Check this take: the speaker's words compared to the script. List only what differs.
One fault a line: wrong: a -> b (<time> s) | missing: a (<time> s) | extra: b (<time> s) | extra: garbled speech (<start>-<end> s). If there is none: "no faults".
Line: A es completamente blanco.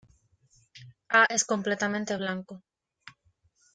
no faults